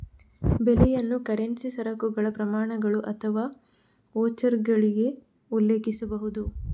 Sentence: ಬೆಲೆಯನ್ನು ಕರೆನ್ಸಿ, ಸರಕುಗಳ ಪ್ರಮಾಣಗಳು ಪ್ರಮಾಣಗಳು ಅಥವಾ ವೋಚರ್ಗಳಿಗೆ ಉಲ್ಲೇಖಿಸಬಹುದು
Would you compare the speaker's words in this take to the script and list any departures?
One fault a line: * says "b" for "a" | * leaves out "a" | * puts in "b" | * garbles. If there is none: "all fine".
* leaves out "ಪ್ರಮಾಣಗಳು"